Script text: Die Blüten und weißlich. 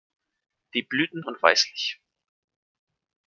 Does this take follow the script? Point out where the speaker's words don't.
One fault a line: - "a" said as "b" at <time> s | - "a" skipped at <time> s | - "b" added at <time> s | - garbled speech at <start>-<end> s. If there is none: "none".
none